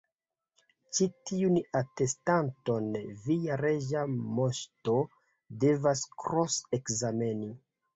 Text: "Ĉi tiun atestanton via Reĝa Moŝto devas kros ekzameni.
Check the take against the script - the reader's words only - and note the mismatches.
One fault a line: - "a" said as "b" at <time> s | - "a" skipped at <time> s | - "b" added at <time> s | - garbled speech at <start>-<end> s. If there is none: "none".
none